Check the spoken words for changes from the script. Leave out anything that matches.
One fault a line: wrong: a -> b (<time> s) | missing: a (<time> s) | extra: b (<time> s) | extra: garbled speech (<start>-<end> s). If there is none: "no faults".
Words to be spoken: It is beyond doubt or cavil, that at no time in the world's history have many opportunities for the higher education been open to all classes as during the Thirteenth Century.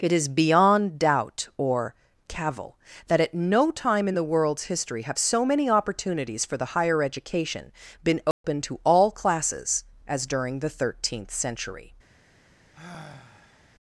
extra: so (5.2 s)